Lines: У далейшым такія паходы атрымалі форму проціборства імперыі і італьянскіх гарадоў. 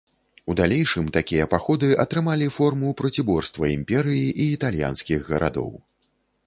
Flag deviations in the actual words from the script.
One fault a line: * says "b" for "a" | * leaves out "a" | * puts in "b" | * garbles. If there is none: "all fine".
all fine